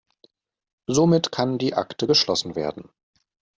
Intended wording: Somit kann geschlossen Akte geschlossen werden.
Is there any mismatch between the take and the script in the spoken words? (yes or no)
yes